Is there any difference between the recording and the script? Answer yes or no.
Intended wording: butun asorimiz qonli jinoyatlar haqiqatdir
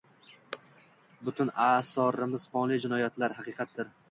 no